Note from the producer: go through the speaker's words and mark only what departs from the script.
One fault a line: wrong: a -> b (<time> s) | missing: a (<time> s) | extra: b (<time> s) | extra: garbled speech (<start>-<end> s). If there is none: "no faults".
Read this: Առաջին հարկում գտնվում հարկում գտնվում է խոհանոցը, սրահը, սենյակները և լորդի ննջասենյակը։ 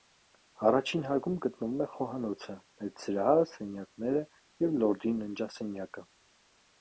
missing: հարկում գտնվում (1.8 s)
extra: մեծ (2.8 s)